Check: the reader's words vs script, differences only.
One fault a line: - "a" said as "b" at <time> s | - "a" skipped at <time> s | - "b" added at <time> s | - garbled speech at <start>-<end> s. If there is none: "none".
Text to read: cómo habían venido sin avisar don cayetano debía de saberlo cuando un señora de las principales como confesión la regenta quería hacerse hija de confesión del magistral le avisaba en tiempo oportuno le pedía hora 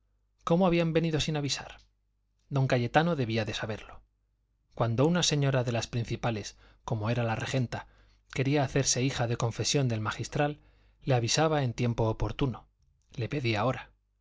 - "un" said as "una" at 5.1 s
- "confesión" said as "era" at 7.1 s